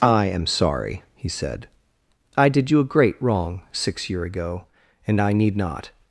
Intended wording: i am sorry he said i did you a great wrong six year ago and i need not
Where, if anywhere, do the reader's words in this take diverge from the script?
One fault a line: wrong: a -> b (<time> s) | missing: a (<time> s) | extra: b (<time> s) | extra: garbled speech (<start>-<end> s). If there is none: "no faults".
no faults